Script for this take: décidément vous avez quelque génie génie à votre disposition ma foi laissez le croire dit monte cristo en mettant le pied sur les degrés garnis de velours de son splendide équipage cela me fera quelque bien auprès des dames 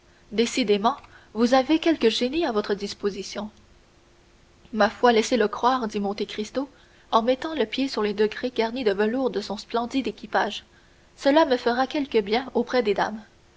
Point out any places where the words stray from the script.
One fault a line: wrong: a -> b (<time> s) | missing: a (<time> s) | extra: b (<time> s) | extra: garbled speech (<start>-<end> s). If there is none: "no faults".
missing: génie (2.4 s)